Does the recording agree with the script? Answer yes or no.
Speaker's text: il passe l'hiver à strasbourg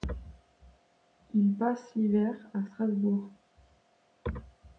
yes